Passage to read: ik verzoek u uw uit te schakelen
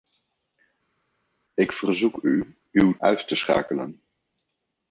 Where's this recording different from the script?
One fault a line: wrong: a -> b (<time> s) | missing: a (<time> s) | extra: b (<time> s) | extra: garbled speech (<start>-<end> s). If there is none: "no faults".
no faults